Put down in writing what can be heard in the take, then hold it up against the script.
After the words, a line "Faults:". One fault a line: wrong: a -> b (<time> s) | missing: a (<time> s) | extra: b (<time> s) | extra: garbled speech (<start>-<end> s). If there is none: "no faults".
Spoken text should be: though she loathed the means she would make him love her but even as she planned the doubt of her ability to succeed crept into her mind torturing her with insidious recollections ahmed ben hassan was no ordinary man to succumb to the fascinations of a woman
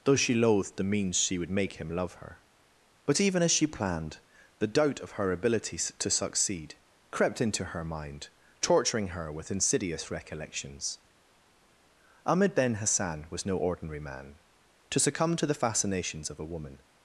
though she loathed the means she would make him love her but even as she planned the doubt of her ability to succeed crept into her mind torturing her with insidious recollections ahmed ben hassan was no ordinary man to succumb to the fascinations of a woman
Faults:
no faults